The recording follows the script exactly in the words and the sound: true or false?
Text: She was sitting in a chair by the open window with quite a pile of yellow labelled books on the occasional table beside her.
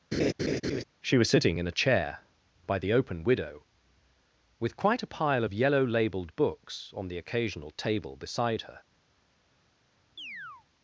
false